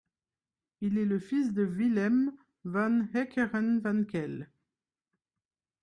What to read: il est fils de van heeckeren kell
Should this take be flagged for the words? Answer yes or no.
yes